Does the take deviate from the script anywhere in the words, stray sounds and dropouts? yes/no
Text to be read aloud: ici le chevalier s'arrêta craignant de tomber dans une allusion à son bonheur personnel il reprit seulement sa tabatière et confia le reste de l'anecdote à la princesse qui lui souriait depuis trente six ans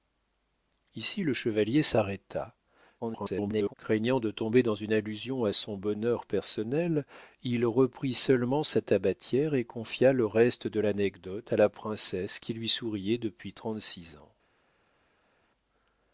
yes